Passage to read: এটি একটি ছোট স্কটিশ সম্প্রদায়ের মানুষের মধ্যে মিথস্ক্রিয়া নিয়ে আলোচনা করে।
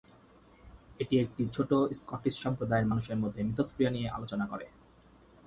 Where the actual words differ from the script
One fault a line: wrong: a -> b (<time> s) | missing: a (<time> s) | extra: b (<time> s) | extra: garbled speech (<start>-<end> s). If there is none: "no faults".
no faults